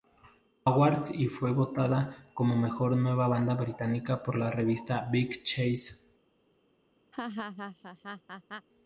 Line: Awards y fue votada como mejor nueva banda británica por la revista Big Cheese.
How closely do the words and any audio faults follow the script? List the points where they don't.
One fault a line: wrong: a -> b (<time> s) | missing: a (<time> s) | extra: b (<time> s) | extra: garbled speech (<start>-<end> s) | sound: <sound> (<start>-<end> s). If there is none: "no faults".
sound: laugh (7.1-8.7 s)